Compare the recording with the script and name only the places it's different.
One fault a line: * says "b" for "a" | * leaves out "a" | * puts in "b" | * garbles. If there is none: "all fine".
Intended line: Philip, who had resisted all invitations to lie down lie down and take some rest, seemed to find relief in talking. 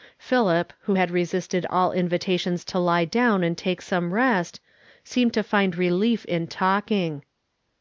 * leaves out "lie down"